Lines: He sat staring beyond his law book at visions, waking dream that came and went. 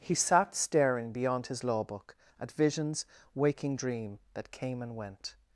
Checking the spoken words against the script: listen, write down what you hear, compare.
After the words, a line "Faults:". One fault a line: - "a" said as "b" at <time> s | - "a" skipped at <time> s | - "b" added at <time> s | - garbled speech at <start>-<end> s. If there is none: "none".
He sat staring beyond his law book at visions, waking dream that came and went.
Faults:
none